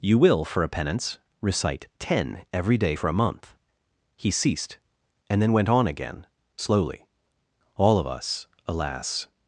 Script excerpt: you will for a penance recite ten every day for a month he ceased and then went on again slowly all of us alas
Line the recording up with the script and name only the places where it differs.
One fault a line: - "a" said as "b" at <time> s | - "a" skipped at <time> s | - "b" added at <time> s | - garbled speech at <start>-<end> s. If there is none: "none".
none